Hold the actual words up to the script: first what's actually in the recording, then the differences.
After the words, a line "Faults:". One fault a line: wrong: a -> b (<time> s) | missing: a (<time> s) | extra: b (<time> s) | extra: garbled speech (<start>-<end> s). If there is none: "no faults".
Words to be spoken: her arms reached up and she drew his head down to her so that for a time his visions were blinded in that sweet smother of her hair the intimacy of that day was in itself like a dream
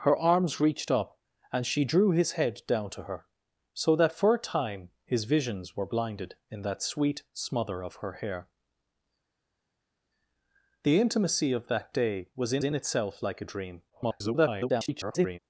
her arms reached up and she drew his head down to her so that for a time his visions were blinded in that sweet smother of her hair the intimacy of that day was in in itself like a dream [garbled]
Faults:
extra: in (12.6 s)
extra: garbled speech (13.9-15.4 s)